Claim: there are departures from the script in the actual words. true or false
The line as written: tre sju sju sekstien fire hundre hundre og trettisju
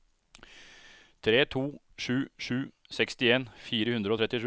true